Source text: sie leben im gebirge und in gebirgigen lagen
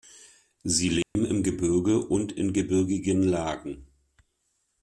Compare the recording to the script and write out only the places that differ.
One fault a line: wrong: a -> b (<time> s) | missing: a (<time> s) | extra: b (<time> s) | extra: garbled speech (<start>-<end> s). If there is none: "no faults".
no faults